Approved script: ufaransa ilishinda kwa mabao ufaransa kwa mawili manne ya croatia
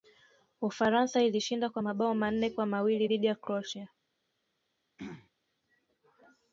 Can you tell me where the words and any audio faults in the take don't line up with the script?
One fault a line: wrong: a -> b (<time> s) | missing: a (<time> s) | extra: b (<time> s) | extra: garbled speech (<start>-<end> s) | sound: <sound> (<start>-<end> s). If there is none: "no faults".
wrong: ufaransa -> manne (2.1 s)
wrong: manne -> dhidi (3.0 s)
sound: throat clearing (5.0-5.3 s)